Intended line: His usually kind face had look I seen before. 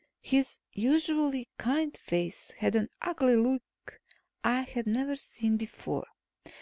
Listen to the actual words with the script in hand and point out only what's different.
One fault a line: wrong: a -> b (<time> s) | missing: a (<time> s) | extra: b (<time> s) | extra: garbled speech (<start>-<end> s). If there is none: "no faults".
extra: an ugly (2.7 s)
extra: had never (4.6 s)